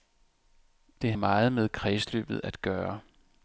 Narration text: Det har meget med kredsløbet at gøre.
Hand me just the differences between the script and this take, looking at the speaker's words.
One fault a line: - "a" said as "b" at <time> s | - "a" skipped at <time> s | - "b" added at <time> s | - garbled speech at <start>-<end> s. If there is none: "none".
- "har" skipped at 1.1 s